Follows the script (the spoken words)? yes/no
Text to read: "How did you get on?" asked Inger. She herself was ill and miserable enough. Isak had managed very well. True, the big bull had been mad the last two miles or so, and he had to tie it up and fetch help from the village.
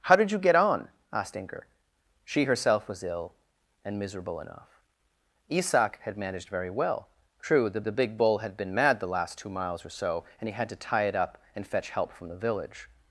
no